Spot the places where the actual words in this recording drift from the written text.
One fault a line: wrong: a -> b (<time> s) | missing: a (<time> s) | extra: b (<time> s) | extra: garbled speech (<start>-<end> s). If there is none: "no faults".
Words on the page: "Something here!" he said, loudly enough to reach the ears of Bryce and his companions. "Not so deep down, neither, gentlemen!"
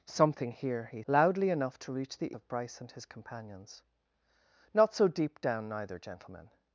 missing: said (1.0 s)
missing: ears (2.4 s)